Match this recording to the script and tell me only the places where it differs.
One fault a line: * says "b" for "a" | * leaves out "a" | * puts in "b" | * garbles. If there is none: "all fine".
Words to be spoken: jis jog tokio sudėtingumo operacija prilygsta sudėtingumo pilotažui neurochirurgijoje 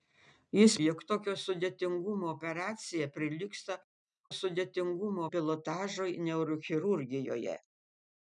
all fine